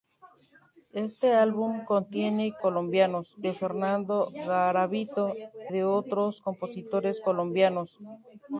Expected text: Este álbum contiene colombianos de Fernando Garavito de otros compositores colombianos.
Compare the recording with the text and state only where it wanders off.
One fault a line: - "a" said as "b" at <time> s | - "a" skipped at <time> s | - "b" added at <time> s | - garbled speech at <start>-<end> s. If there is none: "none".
none